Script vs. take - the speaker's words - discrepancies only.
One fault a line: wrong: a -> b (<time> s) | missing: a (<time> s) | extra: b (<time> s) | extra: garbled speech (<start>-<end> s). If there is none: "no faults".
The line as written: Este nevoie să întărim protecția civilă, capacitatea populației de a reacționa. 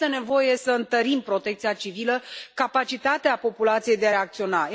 no faults